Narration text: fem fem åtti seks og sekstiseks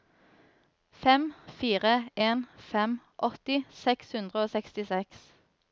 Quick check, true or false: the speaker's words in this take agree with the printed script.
false